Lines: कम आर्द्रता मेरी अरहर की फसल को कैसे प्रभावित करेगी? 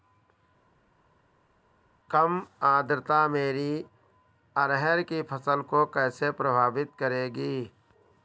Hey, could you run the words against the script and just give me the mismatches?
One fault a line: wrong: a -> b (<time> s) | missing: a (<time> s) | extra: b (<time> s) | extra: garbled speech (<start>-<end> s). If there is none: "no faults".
no faults